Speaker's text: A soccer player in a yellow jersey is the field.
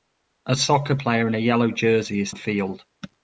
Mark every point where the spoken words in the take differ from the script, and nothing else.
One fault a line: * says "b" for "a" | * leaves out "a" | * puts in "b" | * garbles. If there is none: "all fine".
all fine